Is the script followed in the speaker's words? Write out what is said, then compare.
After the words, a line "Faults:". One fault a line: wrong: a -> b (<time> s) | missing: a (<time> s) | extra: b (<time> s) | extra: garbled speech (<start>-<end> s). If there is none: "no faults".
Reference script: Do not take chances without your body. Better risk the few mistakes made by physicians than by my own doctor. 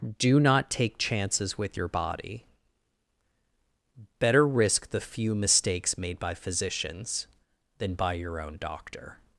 Do not take chances with your body. Better risk the few mistakes made by physicians than by your own doctor.
Faults:
wrong: without -> with (1.6 s)
wrong: my -> your (8.1 s)